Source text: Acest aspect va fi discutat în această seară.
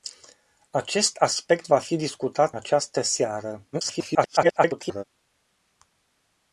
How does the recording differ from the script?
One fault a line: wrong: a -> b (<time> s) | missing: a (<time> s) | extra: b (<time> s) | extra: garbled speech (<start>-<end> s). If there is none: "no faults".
missing: în (2.5 s)
extra: garbled speech (3.7-5.0 s)